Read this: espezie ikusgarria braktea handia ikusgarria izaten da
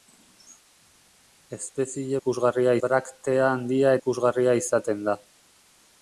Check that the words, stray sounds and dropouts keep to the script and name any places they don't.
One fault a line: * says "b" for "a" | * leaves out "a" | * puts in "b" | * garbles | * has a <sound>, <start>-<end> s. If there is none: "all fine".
all fine